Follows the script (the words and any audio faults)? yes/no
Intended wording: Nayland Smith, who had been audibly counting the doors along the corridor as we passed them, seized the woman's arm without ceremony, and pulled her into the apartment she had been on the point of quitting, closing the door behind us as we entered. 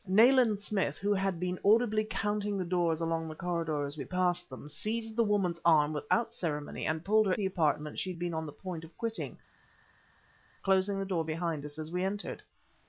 no